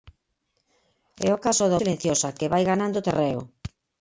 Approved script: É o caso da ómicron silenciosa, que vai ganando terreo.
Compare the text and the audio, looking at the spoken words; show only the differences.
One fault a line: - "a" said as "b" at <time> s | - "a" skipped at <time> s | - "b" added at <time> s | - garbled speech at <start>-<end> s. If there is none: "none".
- "ómicron" skipped at 1.8 s